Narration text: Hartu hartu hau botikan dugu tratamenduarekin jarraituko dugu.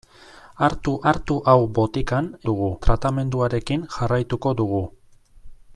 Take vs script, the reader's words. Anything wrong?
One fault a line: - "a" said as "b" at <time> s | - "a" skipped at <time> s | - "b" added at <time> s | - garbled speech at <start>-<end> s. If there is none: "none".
none